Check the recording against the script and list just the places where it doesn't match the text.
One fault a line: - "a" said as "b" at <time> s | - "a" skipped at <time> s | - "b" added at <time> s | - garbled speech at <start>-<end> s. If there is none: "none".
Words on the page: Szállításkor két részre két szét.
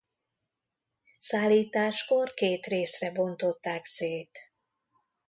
- "két" said as "bontották" at 3.1 s